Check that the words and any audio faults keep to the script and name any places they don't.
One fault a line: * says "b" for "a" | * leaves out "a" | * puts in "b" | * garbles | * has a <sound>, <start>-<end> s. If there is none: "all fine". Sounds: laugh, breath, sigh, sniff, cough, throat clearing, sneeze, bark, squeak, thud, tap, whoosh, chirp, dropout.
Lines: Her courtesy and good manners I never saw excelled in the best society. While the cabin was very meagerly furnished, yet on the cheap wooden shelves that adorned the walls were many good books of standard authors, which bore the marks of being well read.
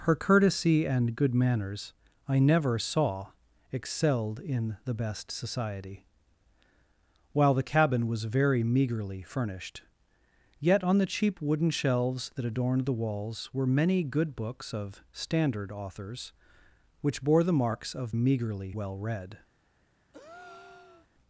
* says "meagerly" for "being"
* has a breath, 20.1-21.1 s